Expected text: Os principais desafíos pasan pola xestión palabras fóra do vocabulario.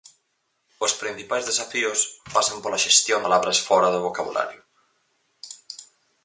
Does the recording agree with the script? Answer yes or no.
yes